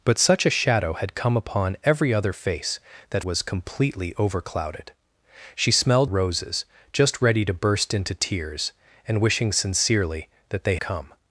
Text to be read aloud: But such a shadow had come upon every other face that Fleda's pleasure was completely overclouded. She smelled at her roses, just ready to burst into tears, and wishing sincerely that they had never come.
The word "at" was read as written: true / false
false